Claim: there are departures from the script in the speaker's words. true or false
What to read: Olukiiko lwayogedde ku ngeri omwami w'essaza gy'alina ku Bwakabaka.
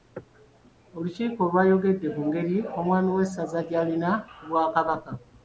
false